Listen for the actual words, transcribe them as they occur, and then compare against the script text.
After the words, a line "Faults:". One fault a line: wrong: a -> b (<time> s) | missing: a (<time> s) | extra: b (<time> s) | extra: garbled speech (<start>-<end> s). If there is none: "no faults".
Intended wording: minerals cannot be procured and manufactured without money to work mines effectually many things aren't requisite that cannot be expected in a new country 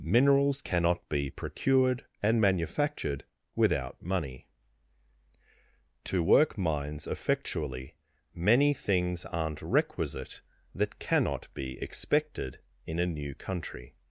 minerals cannot be procured and manufactured without money to work mines effectually many things aren't requisite that cannot be expected in a new country
Faults:
no faults